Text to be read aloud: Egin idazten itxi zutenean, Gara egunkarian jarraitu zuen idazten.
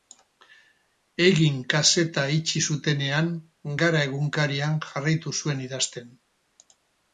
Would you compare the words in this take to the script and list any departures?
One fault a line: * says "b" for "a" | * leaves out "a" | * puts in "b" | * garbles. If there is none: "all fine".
* says "kazeta" for "idazten"